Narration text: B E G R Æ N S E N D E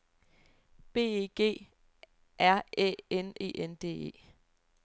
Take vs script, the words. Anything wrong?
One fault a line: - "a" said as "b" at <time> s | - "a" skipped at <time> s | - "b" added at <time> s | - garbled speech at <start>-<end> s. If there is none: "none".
- "S" skipped at 3.4 s